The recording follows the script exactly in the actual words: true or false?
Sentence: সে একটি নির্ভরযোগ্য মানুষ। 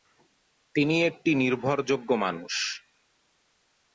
false